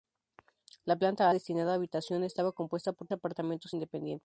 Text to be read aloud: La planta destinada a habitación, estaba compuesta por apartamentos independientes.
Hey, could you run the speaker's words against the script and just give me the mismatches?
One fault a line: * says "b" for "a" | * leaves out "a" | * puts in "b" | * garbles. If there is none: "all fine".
all fine